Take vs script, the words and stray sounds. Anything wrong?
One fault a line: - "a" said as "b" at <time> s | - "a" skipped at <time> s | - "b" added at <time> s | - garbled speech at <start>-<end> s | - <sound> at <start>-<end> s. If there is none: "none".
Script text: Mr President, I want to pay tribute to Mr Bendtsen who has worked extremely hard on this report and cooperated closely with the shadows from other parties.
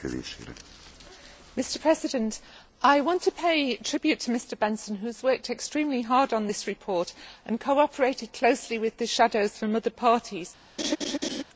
- laugh at 10.8-11.4 s